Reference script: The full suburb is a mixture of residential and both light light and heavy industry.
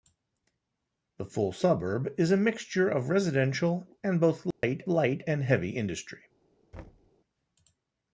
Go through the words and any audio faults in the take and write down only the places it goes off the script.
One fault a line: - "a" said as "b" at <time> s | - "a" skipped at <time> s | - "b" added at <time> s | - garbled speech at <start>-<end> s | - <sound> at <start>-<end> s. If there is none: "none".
- dropout at 4.5-4.6 s
- thud at 6.7-7.1 s